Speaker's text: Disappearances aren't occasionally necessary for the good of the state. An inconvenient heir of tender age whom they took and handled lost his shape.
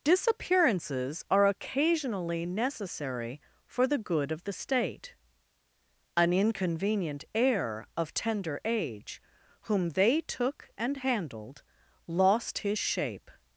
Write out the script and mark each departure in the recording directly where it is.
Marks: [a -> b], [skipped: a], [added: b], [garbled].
Disappearances [aren't -> are] occasionally necessary for the good of the state. An inconvenient heir of tender age whom they took and handled lost his shape.